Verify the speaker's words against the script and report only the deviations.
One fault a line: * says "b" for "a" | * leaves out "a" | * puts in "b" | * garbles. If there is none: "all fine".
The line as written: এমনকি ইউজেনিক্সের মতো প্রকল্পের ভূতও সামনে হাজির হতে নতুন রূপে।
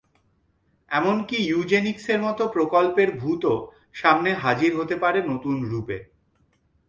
* puts in "পারে"